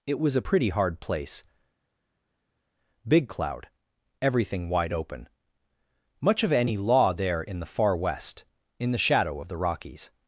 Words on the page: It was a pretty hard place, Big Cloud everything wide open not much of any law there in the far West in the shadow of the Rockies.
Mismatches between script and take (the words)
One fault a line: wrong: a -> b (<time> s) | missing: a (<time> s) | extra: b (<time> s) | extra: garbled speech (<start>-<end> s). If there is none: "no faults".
missing: not (5.3 s)